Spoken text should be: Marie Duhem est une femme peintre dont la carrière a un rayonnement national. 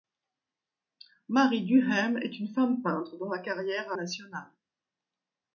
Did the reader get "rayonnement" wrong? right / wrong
wrong